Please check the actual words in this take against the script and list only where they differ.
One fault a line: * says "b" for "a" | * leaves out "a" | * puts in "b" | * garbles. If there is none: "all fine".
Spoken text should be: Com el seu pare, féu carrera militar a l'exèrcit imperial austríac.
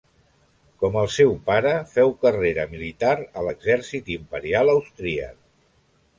all fine